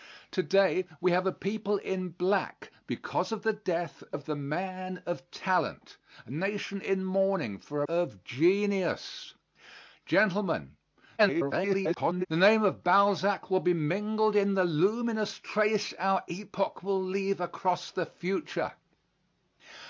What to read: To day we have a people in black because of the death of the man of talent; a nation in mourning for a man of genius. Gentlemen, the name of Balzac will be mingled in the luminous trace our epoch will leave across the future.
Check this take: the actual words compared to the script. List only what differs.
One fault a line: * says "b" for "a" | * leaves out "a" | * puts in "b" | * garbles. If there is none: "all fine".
* leaves out "man"
* garbles